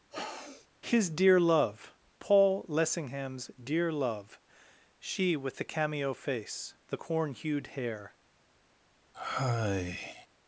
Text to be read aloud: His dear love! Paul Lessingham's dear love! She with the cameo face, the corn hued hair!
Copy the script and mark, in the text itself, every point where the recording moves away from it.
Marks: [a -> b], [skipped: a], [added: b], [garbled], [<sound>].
[sniff] His dear love! Paul Lessingham's dear love! She with the cameo face, the corn hued hair! [sigh]